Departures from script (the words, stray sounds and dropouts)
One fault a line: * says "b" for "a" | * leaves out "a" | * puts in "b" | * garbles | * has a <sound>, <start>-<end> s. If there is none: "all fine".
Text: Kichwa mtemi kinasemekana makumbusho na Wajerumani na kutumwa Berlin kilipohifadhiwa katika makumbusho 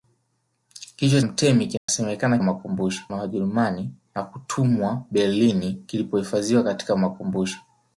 * has a dropout, 1.8-1.9 s